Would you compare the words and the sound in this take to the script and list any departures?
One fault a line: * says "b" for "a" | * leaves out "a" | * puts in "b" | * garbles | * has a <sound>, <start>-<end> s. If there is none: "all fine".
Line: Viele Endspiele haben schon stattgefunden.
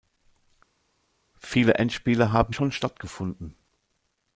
all fine